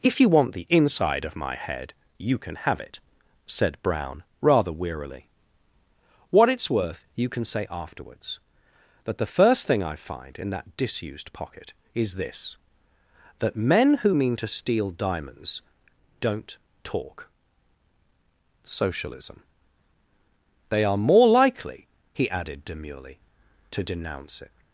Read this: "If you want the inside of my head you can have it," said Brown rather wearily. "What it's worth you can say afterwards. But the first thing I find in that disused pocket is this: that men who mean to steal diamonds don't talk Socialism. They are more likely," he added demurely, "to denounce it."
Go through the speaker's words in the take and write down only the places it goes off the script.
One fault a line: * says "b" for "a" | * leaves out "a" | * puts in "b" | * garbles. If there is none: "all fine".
* says "That" for "But"